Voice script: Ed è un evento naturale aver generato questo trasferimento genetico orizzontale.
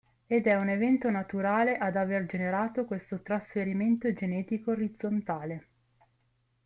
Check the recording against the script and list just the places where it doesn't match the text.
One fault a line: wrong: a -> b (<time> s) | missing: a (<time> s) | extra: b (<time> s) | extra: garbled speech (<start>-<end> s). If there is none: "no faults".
extra: ad (1.8 s)